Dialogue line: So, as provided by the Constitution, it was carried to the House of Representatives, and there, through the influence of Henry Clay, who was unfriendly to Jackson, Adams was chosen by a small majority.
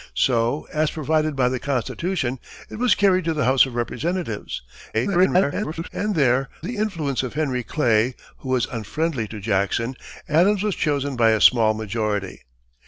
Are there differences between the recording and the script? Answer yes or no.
yes